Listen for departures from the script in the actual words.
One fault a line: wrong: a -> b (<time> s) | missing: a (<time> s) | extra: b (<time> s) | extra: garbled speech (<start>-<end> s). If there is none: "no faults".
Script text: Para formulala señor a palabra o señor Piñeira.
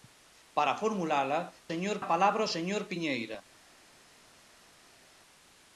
no faults